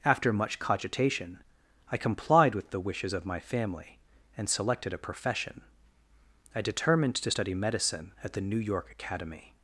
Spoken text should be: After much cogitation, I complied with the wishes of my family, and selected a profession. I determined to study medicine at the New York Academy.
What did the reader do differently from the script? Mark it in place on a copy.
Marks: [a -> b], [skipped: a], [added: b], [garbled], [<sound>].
After much cogitation, I complied with the wishes of my family, and selected a profession. I determined to study medicine at the New York Academy.